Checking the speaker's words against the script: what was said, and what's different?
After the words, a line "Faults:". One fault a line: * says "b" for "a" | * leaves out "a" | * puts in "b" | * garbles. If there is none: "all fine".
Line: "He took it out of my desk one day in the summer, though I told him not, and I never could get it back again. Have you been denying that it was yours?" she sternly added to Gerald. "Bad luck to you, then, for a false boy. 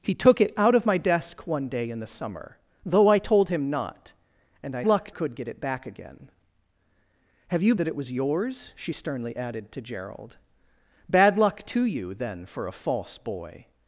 "He took it out of my desk one day in the summer, though I told him not, and I luck could get it back again. Have you that it was yours?" she sternly added to Gerald. "Bad luck to you, then, for a false boy.
Faults:
* says "luck" for "never"
* leaves out "been denying"